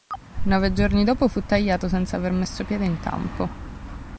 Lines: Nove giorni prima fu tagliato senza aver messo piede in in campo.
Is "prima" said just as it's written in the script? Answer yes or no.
no